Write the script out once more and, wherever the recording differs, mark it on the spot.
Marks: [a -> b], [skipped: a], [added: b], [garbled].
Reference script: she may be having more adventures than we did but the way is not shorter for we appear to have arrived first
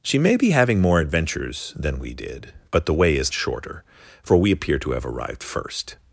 she may be having more adventures than we did but the way is [skipped: not] shorter for we appear to have arrived first